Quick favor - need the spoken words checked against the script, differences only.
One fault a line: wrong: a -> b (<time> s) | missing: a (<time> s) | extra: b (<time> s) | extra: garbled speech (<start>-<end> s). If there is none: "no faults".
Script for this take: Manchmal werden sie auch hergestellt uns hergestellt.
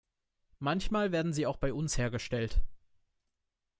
wrong: hergestellt -> bei (1.6 s)